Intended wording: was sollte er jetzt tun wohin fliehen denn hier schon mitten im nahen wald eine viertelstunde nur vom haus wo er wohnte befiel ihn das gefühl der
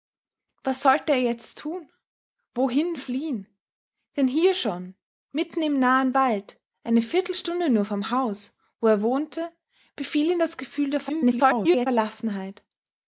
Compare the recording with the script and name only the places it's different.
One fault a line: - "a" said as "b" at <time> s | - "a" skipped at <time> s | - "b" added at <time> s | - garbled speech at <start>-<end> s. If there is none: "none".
- garbled speech at 11.1-11.9 s